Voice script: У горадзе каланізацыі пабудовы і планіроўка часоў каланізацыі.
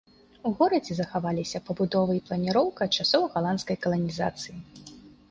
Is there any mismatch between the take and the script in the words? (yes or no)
yes